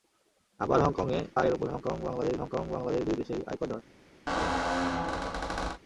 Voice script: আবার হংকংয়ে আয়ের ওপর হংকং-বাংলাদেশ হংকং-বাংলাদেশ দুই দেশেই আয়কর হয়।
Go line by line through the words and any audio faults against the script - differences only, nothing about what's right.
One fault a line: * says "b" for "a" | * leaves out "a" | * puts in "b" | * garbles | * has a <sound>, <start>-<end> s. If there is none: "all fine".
* has a squeak, 4.3-5.8 s